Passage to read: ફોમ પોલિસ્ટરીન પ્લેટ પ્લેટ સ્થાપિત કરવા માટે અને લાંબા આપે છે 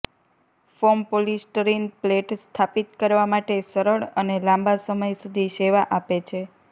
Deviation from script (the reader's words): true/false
true